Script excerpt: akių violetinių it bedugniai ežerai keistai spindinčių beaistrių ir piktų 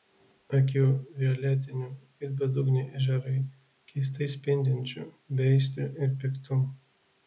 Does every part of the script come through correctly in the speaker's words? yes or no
yes